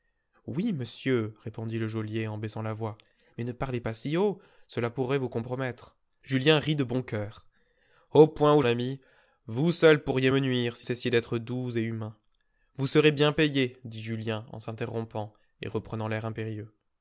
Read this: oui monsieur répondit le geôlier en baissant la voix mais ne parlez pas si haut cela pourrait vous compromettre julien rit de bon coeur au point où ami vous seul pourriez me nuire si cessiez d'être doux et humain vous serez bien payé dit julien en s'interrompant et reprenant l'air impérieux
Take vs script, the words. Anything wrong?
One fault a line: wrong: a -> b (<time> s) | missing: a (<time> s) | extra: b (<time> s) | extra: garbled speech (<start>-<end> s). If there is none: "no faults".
no faults